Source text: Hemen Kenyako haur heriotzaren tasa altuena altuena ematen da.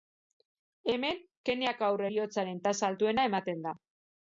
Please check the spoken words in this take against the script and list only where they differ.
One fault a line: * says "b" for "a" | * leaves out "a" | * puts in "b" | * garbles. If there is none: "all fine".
* leaves out "altuena"